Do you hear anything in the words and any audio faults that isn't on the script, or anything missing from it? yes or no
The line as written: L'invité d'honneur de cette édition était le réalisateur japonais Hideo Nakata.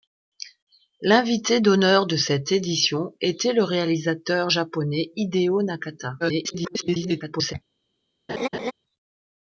yes